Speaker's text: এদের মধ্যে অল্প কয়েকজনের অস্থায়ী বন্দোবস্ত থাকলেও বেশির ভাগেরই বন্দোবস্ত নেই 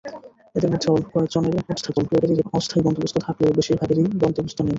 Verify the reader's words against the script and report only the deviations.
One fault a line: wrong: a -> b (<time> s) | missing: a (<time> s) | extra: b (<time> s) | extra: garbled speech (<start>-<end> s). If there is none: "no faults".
extra: garbled speech (1.7-2.4 s)